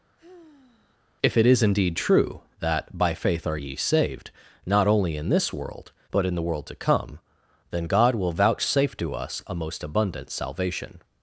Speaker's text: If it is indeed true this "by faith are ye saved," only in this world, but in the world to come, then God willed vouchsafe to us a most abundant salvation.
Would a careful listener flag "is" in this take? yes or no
no